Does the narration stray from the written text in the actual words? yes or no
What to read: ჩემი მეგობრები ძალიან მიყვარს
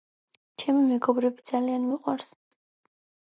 no